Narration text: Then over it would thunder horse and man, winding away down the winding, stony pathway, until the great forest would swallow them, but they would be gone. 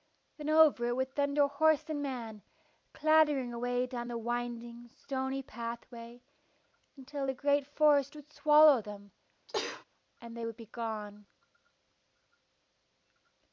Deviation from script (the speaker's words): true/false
true